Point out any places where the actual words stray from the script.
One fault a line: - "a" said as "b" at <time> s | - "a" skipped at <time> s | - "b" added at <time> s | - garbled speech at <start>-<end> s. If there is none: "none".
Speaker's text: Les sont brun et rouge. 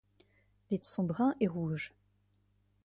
none